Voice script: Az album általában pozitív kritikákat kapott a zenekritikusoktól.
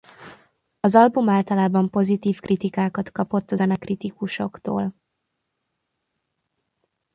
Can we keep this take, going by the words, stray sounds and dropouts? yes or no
yes